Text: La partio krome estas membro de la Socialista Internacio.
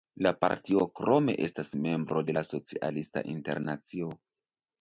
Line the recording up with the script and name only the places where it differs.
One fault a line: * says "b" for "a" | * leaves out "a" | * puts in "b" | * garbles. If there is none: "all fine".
all fine